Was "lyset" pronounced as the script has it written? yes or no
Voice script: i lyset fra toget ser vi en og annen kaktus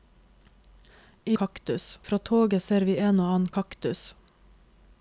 no